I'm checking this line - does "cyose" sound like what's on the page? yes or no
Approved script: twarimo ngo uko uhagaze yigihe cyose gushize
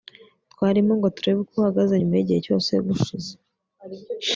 yes